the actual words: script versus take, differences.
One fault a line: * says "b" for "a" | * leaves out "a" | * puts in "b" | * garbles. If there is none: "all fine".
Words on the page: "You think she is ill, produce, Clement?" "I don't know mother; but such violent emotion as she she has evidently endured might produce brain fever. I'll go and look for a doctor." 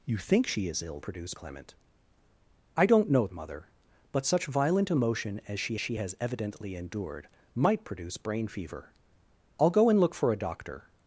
all fine